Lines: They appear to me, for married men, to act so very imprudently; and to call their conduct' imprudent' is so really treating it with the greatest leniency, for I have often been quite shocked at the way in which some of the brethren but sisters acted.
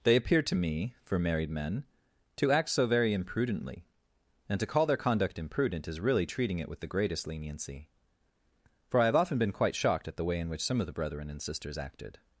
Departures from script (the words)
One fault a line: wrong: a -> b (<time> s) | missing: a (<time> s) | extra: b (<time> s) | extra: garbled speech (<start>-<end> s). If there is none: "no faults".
missing: so (6.0 s)
wrong: but -> and (11.3 s)